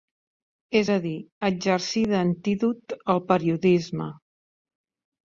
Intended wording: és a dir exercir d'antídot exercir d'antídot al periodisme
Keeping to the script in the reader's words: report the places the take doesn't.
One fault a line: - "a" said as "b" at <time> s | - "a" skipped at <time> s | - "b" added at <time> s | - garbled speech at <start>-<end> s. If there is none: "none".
- "exercir d'antídot" skipped at 3.0 s